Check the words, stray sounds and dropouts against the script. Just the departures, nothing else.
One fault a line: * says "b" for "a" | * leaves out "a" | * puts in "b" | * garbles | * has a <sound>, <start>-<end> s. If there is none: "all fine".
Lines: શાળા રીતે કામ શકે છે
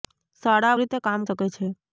all fine